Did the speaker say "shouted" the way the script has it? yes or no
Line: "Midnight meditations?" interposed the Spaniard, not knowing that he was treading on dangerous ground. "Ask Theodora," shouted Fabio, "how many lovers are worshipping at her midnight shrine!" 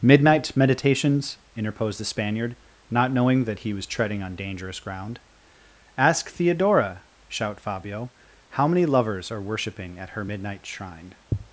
no